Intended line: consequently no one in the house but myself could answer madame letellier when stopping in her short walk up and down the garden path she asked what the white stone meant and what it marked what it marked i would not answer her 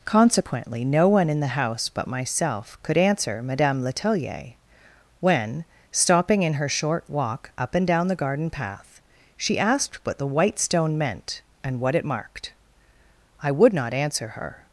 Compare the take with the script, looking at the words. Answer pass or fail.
fail